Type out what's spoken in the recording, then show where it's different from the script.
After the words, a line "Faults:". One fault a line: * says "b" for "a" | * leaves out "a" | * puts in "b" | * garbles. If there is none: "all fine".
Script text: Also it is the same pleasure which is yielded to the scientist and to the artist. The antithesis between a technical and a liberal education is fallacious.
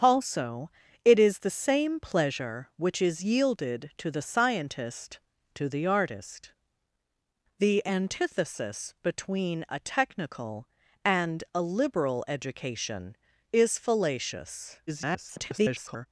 Also it is the same pleasure which is yielded to the scientist to the artist. The antithesis between a technical and a liberal education is fallacious. [garbled]
Faults:
* leaves out "and"
* garbles